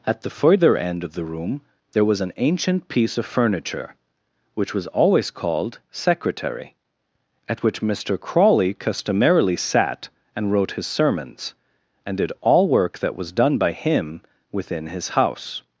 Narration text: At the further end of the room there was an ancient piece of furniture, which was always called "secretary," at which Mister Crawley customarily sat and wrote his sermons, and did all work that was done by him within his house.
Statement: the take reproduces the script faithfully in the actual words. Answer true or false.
true